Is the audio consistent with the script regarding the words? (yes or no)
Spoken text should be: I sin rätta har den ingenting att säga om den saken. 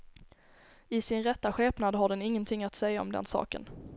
no